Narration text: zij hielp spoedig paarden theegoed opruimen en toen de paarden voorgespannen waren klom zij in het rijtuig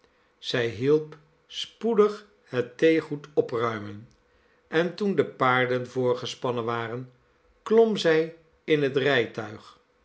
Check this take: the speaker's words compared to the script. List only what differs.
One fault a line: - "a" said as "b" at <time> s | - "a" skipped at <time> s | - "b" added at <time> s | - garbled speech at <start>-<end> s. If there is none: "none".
- "paarden" said as "het" at 2.4 s